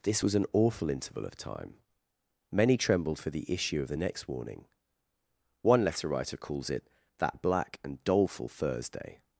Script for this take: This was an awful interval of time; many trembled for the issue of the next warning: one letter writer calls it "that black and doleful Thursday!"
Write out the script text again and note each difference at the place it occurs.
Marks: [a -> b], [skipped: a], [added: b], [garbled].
This was an awful interval of time; many trembled for the issue of the next warning: one letter writer calls it "that black and doleful Thursday!"